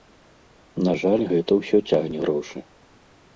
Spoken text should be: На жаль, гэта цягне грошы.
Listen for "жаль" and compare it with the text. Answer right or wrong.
right